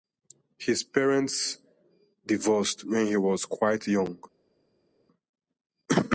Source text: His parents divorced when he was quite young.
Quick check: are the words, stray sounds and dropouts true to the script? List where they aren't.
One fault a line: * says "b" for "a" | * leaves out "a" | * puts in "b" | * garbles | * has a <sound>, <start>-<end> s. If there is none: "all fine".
all fine